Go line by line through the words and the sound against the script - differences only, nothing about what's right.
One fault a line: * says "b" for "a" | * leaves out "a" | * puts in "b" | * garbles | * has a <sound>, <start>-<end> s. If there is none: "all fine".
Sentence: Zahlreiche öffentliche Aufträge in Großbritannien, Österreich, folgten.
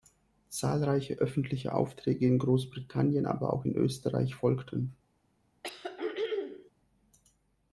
* puts in "aber auch in"
* has a throat clearing, 5.6-6.7 s